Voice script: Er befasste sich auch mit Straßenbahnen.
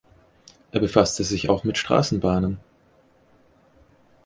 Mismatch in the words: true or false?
false